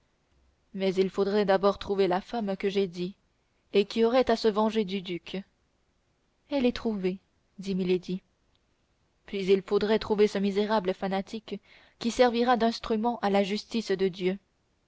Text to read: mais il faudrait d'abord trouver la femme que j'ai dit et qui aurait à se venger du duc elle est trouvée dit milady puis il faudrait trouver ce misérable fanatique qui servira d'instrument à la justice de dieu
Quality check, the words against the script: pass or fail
pass